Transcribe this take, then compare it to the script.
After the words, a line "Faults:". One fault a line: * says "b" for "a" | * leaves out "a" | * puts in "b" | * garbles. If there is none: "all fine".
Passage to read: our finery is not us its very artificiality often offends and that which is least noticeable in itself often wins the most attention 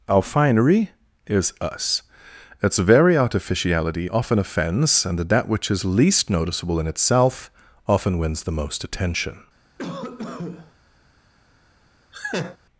our finery is us its very artificiality often offends and that which is least noticeable in itself often wins the most attention
Faults:
* leaves out "not"